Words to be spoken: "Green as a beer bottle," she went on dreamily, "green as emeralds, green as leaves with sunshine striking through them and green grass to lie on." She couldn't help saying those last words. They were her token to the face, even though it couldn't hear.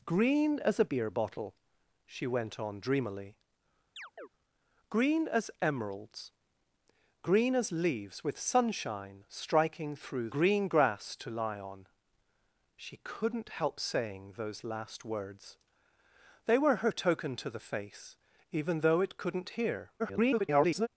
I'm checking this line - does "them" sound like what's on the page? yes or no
no